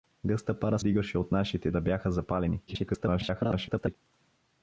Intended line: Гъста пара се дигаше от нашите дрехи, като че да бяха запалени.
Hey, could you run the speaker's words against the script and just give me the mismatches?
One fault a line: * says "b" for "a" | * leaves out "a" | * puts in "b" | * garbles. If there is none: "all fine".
* leaves out "се"
* leaves out "дрехи като че"
* garbles